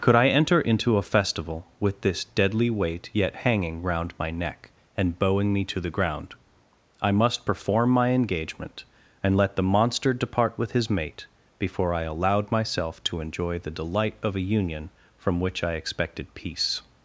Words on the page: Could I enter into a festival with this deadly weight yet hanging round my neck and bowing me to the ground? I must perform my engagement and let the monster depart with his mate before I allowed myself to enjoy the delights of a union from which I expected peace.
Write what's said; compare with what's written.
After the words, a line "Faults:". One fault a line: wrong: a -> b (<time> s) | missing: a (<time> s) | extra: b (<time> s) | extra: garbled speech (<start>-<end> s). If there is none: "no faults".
Could I enter into a festival with this deadly weight yet hanging round my neck and bowing me to the ground? I must perform my engagement and let the monster depart with his mate before I allowed myself to enjoy the delight of a union from which I expected peace.
Faults:
wrong: delights -> delight (13.7 s)